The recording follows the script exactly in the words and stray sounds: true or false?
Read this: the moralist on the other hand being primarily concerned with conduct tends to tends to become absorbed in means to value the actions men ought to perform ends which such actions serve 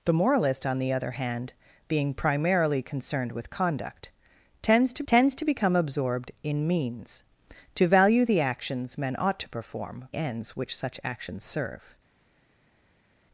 true